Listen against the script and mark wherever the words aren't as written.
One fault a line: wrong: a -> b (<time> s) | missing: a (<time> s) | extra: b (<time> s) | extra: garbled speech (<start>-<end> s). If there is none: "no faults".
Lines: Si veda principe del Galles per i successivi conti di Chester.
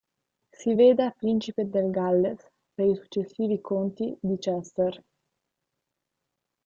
no faults